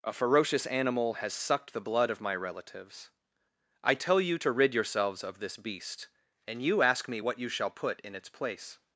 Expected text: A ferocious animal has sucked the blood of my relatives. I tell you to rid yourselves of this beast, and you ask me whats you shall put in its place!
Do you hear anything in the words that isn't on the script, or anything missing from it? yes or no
yes